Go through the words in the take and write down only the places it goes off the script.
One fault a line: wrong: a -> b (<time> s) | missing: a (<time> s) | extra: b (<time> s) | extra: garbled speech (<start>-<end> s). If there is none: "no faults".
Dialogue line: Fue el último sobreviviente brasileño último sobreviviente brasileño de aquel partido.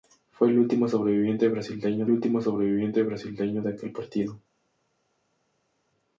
no faults